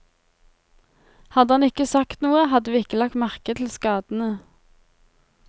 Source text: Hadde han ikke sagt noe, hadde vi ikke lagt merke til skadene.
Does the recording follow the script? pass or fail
pass